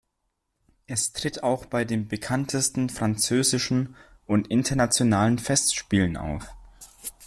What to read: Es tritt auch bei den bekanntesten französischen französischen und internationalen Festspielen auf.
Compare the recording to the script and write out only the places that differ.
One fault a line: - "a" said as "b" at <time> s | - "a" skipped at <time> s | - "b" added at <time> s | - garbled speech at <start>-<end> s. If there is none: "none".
- "französischen" skipped at 3.9 s